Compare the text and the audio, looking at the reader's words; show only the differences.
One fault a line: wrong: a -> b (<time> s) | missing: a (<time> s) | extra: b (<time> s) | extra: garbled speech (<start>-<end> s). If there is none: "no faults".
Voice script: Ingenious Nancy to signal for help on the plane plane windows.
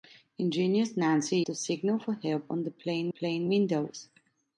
no faults